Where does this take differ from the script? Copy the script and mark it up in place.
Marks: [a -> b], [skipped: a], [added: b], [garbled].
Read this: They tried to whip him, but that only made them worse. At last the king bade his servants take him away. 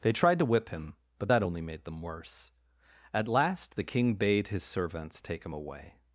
They tried to whip him, but that only made them worse. At last the king bade his servants take him away.